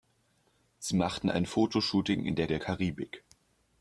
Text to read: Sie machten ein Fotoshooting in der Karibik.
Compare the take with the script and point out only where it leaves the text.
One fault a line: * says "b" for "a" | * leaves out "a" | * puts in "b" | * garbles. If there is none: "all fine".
* puts in "der"